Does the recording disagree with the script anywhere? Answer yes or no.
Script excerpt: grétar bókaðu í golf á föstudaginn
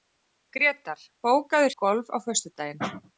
no